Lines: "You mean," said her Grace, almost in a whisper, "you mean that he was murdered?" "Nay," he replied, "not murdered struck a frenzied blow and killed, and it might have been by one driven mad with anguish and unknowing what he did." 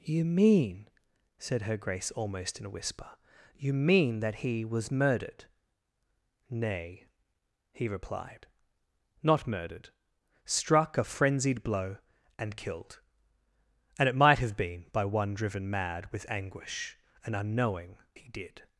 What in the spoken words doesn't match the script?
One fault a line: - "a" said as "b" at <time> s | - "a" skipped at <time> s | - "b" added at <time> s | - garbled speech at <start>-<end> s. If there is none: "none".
- "what" skipped at 18.0 s